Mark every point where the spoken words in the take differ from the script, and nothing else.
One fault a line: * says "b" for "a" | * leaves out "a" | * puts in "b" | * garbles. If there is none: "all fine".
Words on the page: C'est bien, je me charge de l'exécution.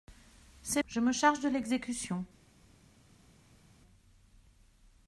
* leaves out "bien"